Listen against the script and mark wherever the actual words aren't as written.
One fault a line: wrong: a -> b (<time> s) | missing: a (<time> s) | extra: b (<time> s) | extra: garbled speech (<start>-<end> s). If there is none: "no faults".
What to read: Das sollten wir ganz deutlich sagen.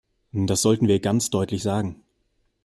no faults